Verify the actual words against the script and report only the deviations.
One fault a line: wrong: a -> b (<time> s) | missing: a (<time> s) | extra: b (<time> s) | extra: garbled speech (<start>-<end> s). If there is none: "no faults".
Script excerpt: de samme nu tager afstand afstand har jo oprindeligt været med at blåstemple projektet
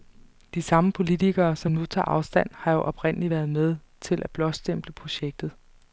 extra: politikere som (0.9 s)
missing: afstand (2.5 s)
extra: til (4.0 s)